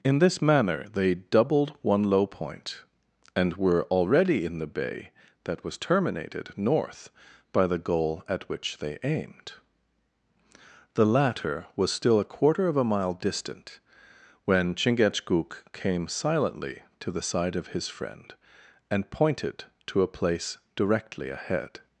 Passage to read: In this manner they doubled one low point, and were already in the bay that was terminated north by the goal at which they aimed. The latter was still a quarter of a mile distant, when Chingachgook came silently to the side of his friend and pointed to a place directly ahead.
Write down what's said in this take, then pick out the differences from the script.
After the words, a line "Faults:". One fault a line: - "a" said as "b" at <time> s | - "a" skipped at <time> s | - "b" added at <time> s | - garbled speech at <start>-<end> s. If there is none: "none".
In this manner they doubled one low point, and were already in the bay that was terminated north by the goal at which they aimed. The latter was still a quarter of a mile distant, when Chingachgook came silently to the side of his friend and pointed to a place directly ahead.
Faults:
none